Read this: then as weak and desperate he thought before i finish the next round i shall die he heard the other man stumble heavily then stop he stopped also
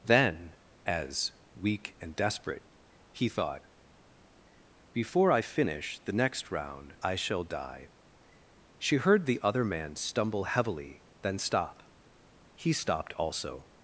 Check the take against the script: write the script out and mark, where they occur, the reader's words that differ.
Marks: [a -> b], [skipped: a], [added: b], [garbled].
then as weak and desperate he thought before i finish the next round i shall die [he -> she] heard the other man stumble heavily then stop he stopped also